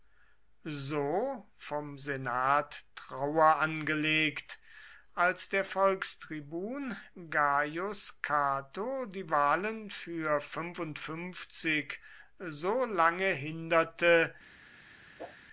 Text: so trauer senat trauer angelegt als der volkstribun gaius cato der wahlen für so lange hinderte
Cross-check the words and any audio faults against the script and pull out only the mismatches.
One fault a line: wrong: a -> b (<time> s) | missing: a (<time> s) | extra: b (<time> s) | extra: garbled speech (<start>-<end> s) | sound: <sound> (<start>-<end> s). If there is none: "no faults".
wrong: trauer -> vom (1.5 s)
wrong: der -> die (9.1 s)
sound: whoosh (15.2-15.4 s)